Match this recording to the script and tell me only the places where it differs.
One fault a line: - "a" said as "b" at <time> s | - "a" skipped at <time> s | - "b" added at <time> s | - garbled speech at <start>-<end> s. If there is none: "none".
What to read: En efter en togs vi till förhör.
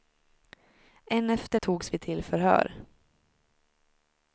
- "en" skipped at 1.6 s